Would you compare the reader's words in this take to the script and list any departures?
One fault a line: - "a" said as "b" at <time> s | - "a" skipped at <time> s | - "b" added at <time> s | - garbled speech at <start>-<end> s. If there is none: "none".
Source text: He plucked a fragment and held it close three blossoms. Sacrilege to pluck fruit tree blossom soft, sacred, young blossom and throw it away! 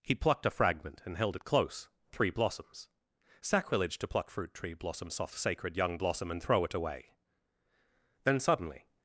- "Then suddenly" added at 8.2 s